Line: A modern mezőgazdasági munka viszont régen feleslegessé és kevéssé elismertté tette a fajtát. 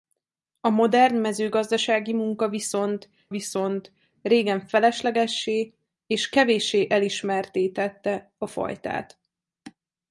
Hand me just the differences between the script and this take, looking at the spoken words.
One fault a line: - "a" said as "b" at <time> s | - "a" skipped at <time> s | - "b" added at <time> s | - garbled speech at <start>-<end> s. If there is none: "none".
- "viszont" added at 3.3 s